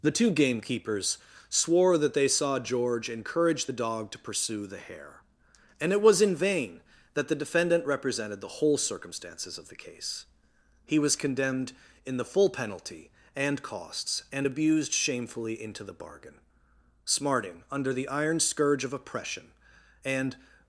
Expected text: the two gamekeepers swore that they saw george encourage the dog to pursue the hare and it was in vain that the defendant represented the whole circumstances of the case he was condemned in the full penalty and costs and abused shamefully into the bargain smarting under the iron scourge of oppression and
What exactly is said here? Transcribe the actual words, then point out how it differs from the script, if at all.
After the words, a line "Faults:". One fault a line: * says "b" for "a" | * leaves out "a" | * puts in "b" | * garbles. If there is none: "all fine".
the two gamekeepers swore that they saw george encourage the dog to pursue the hare and it was in vain that the defendant represented the whole circumstances of the case he was condemned in the full penalty and costs and abused shamefully into the bargain smarting under the iron scourge of oppression and
Faults:
all fine